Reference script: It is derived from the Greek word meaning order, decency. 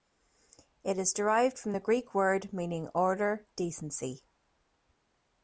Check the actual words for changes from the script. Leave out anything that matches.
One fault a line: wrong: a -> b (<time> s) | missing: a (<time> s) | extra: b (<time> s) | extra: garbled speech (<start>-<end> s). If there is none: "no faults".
no faults